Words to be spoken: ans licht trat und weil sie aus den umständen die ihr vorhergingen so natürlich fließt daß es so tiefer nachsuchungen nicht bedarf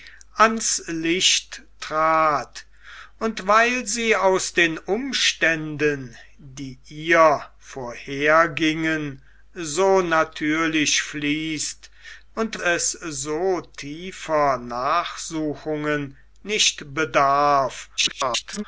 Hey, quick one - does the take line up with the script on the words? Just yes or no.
no